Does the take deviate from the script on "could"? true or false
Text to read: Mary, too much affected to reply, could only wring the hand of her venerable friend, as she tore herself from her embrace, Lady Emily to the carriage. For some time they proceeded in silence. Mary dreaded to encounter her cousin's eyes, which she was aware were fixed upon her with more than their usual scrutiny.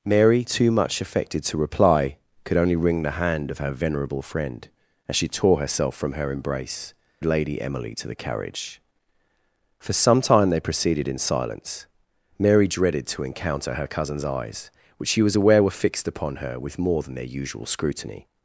false